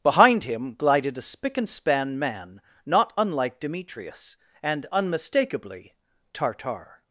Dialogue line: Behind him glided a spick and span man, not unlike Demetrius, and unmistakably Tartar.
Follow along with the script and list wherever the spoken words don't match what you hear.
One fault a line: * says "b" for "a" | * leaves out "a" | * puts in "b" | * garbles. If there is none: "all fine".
all fine